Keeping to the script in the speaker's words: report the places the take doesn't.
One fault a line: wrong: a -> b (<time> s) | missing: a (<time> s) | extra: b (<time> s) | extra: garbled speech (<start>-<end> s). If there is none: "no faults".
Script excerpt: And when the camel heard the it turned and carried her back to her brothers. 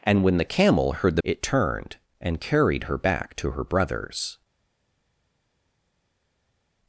no faults